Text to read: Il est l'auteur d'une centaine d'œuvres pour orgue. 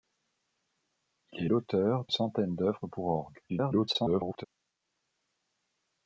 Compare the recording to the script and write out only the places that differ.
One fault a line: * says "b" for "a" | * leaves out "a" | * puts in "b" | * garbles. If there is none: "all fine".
* leaves out "d'une"
* garbles